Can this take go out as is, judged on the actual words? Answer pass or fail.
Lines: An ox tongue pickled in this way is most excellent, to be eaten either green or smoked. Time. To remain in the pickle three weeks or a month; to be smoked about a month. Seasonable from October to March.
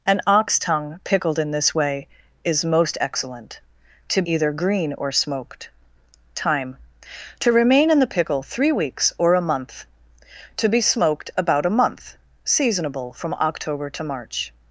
fail